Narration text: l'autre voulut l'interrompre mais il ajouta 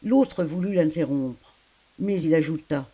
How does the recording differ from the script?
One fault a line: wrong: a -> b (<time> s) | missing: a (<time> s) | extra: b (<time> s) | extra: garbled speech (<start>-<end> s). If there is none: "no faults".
no faults